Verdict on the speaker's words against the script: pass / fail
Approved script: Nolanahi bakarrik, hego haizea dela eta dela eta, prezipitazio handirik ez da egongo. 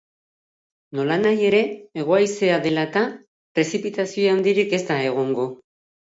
fail